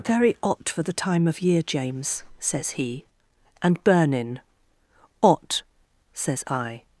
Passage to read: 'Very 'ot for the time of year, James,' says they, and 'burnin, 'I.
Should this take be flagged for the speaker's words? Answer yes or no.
yes